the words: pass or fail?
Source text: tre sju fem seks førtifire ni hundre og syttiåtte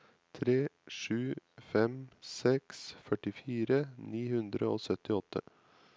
pass